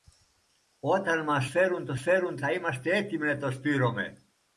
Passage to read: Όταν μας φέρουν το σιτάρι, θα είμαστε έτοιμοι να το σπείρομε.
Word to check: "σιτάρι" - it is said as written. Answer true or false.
false